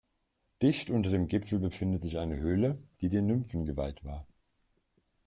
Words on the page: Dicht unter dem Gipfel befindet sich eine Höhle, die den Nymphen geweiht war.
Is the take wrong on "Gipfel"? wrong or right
right